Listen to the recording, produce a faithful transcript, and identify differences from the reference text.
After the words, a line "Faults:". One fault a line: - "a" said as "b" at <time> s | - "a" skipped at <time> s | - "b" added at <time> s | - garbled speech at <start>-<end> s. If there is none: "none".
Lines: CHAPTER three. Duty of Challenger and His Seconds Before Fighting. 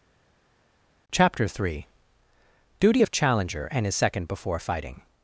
CHAPTER three. Duty of Challenger and His Second Before Fighting.
Faults:
- "Seconds" said as "Second" at 3.9 s